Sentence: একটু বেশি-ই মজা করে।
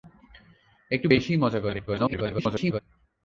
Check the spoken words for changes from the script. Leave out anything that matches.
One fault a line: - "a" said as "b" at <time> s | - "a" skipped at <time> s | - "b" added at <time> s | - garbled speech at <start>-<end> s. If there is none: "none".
- garbled speech at 1.9-2.8 s